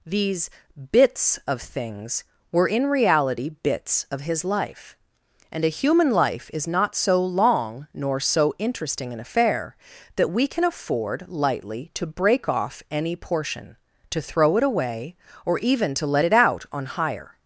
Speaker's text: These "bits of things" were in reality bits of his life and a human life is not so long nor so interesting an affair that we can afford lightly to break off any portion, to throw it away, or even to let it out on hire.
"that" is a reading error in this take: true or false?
false